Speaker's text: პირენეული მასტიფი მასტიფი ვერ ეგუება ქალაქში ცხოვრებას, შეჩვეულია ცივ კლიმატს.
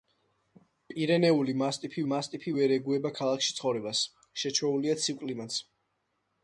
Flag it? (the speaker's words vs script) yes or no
no